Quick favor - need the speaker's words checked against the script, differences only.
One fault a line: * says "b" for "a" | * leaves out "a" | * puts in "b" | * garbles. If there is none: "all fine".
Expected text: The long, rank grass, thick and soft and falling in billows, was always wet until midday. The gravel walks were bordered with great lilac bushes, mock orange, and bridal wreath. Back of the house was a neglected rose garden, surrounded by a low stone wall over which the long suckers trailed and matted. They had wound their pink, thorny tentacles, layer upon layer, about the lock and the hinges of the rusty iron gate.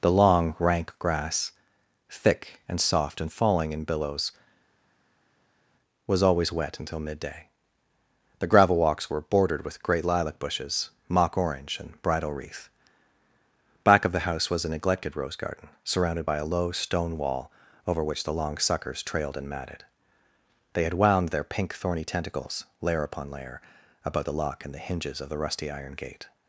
all fine